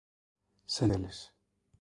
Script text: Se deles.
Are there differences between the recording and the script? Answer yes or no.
no